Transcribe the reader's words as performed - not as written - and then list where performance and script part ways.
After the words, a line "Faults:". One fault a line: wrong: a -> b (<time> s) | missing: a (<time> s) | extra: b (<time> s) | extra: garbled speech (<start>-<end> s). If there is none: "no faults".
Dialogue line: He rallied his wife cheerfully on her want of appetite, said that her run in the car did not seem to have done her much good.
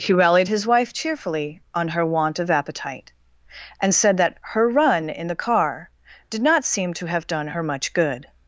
He rallied his wife cheerfully on her want of appetite, and said that her run in the car did not seem to have done her much good.
Faults:
extra: and (3.8 s)